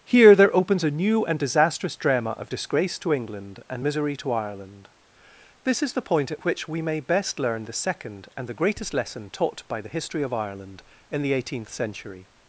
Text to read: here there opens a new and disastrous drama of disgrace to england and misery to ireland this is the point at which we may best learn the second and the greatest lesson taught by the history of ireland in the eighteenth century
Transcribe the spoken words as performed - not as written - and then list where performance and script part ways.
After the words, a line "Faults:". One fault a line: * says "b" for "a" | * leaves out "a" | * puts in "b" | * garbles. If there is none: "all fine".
here there opens a new and disastrous drama of disgrace to england and misery to ireland this is the point at which we may best learn the second and the greatest lesson taught by the history of ireland in the eighteenth century
Faults:
all fine